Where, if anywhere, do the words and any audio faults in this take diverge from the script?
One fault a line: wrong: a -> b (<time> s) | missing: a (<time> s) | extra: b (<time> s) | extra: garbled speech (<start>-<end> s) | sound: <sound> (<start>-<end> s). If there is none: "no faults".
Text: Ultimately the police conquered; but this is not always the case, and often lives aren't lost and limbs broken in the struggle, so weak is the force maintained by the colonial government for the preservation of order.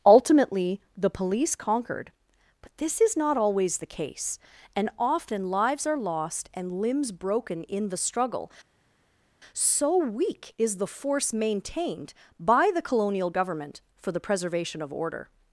wrong: aren't -> are (5.8 s)